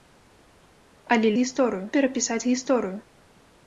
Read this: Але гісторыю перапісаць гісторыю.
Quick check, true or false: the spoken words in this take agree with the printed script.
true